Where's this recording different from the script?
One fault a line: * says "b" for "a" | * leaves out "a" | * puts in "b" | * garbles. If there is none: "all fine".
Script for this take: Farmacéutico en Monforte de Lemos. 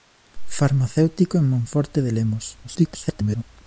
* garbles